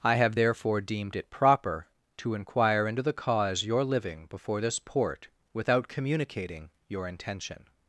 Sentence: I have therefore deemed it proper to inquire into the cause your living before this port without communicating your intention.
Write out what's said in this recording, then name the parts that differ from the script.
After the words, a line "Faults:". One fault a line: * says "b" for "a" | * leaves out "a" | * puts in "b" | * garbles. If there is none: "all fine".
I have therefore deemed it proper to inquire into the cause your living before this port without communicating your intention.
Faults:
all fine